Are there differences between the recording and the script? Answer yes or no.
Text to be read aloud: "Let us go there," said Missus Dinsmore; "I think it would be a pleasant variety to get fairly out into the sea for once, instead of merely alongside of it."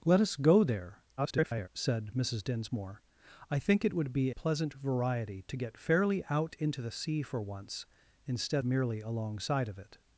yes